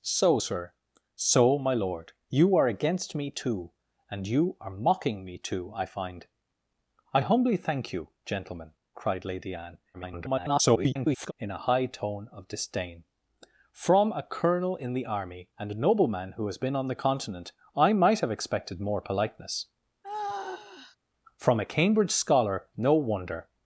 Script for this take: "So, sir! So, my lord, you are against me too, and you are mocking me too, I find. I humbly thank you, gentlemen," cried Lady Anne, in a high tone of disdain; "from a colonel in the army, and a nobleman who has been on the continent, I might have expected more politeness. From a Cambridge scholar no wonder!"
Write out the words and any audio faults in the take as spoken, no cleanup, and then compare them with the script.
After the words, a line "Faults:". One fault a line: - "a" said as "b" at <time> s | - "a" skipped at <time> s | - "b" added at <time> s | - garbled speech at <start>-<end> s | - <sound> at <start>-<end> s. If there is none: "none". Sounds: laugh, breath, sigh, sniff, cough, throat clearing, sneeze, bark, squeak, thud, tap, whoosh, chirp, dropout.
"So, sir! So, my lord, you are against me too, and you are mocking me too, I find. I humbly thank you, gentlemen," cried Lady Anne, [garbled] in a high tone of disdain; "from a colonel in the army, and a nobleman who has been on the continent, I might have expected more politeness. From a Cambridge scholar no wonder!"
Faults:
- garbled speech at 9.9-11.3 s
- sigh at 20.0-21.0 s